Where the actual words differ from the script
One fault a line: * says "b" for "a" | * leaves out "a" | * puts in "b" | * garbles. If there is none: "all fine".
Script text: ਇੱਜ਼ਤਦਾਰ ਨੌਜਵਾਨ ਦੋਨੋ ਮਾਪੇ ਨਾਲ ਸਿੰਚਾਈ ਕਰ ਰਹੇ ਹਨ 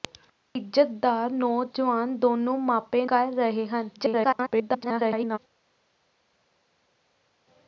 * leaves out "ਨਾਲ ਸਿੰਚਾਈ"
* garbles